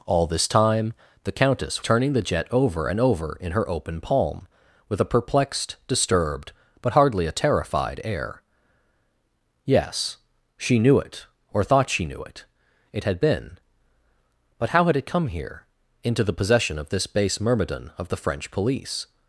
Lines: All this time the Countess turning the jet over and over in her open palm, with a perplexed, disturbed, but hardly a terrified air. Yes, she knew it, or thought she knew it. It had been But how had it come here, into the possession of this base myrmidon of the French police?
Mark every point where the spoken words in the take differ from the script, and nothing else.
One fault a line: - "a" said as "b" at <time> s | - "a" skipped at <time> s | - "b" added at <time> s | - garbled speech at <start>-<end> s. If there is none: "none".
none